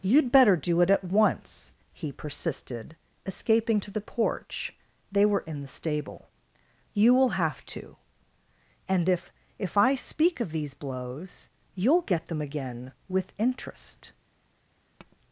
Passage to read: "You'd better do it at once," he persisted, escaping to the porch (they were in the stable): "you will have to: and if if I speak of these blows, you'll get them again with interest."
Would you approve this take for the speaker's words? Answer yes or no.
yes